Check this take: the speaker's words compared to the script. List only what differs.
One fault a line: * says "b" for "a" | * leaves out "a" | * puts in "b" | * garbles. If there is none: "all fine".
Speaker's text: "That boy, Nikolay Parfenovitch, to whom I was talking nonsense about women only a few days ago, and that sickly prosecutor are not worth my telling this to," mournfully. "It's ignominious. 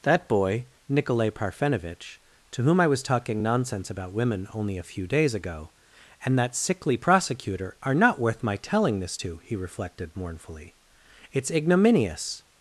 * puts in "he reflected"